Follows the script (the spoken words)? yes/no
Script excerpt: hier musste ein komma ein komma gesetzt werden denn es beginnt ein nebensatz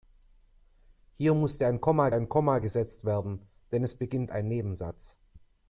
yes